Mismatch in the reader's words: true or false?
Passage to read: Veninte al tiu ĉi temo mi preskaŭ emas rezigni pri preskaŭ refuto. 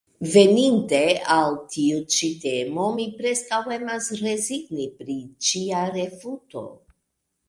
true